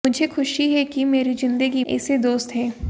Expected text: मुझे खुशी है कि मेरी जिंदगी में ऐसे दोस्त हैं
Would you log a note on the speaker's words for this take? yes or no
yes